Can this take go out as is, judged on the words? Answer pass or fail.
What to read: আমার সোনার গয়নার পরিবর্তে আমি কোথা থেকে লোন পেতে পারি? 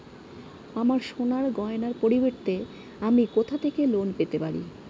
pass